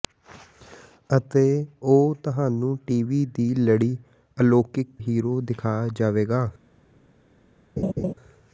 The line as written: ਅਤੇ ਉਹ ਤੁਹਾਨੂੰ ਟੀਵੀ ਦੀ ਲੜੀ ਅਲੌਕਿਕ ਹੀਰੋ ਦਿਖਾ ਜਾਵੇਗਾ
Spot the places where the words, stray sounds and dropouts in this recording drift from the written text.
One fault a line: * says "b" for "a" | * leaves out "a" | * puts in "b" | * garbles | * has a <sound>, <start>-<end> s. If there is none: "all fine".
* has a laugh, 7.8-8.1 s